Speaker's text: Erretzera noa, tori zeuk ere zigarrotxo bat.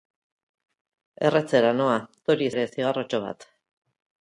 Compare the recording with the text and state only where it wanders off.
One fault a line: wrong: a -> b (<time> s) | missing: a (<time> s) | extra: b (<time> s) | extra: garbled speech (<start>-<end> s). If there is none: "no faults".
missing: zeuk (2.5 s)